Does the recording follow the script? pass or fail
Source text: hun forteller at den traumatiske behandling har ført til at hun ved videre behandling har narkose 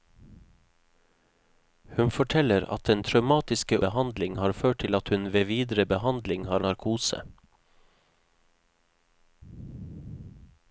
pass